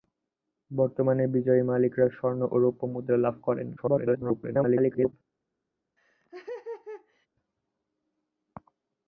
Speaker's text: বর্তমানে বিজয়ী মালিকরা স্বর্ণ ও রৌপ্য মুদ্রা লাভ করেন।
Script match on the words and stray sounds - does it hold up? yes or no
no